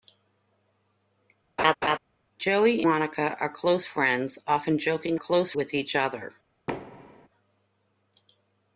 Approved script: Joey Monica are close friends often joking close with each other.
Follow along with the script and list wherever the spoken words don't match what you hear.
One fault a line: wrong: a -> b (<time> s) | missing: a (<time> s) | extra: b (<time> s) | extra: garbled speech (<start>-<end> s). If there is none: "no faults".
no faults